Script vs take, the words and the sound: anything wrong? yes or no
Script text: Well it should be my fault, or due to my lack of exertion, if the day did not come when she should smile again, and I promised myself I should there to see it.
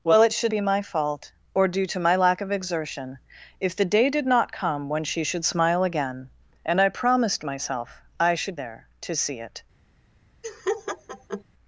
yes